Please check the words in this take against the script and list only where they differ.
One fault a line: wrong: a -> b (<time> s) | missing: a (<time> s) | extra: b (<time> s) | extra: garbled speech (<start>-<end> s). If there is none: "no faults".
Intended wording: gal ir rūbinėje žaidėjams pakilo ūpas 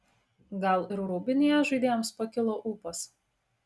no faults